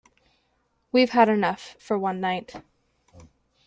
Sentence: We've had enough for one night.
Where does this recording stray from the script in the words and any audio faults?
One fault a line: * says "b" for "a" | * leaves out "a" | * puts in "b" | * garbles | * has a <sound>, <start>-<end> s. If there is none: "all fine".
all fine